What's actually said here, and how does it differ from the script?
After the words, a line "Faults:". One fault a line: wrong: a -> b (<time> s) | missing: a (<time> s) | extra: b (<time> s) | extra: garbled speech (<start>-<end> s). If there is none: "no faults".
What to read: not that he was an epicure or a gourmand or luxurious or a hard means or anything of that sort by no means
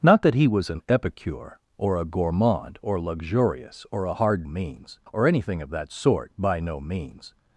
not that he was an epicure or a gourmand or luxurious or a hard means or anything of that sort by no means
Faults:
no faults